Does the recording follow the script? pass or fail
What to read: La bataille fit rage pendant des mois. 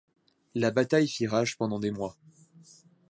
pass